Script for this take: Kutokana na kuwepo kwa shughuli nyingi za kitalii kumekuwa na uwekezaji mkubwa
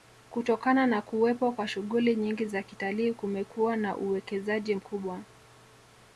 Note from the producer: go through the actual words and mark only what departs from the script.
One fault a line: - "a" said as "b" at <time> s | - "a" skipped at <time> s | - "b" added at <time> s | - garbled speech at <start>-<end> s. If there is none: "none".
none